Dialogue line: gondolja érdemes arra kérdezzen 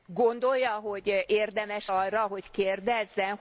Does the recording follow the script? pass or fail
fail